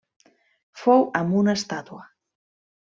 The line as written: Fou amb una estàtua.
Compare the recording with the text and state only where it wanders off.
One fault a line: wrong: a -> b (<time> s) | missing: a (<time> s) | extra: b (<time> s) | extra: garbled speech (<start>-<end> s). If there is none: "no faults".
no faults